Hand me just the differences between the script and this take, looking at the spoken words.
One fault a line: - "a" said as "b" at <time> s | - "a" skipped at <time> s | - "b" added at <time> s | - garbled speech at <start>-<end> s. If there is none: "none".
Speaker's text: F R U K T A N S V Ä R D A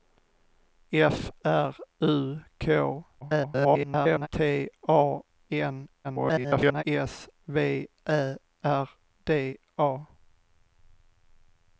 - garbled speech at 3.2-4.3 s
- garbled speech at 6.0-6.8 s